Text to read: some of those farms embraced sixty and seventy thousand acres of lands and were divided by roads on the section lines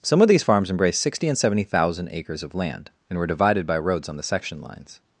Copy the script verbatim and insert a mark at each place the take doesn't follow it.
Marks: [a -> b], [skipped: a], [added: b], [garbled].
some of [those -> these] farms embraced sixty and seventy thousand acres of [lands -> land] and were divided by roads on the section lines